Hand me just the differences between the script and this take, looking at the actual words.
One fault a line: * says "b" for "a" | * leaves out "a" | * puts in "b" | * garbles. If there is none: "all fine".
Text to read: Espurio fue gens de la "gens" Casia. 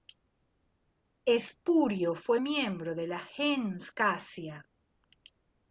* says "miembro" for "gens"